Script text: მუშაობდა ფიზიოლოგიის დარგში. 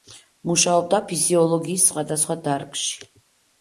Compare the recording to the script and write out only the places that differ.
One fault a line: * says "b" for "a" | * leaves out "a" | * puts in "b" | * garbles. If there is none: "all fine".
* puts in "სხვადასხვა"